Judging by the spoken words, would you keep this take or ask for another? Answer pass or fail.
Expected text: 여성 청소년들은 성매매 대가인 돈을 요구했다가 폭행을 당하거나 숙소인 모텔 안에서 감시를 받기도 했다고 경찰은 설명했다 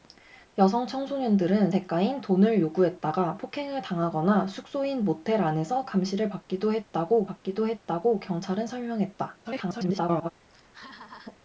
fail